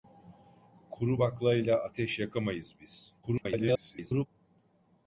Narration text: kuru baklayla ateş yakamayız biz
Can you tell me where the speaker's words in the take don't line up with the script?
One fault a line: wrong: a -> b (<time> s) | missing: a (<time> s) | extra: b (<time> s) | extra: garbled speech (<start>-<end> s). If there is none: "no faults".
extra: garbled speech (3.2-4.3 s)